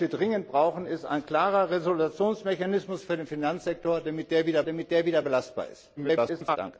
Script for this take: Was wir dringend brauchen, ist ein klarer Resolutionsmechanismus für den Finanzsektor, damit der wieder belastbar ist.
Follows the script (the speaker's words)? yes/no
no